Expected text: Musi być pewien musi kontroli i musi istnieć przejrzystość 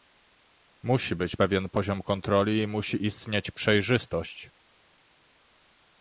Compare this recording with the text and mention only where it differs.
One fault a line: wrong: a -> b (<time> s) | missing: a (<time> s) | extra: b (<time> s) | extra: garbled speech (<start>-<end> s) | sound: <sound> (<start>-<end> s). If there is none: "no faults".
wrong: musi -> poziom (1.7 s)